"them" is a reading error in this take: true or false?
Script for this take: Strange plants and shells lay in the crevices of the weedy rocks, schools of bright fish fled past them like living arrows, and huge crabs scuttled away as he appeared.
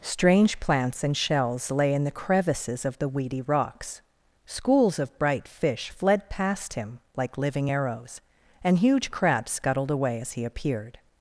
true